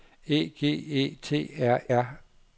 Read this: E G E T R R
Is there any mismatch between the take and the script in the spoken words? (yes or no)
no